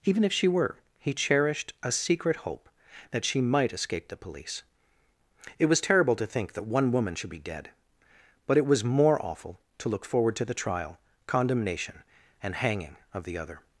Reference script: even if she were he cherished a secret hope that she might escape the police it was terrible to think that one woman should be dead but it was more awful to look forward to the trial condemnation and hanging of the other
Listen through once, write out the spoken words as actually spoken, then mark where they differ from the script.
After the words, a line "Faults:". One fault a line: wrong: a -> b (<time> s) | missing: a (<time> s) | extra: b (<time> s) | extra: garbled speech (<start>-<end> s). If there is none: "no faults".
even if she were he cherished a secret hope that she might escape the police it was terrible to think that one woman should be dead but it was more awful to look forward to the trial condemnation and hanging of the other
Faults:
no faults